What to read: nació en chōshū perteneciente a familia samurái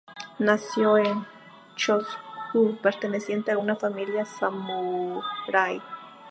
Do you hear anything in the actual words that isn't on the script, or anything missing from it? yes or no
yes